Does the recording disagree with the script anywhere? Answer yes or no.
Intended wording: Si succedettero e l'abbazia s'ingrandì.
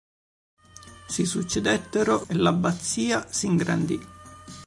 no